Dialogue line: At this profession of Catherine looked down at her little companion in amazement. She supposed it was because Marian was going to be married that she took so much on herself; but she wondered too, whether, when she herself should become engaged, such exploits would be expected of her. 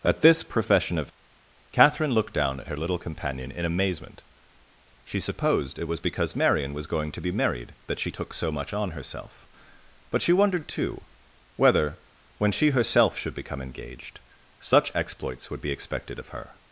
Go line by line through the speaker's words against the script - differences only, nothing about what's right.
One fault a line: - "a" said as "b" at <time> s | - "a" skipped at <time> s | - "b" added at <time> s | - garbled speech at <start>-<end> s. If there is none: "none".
none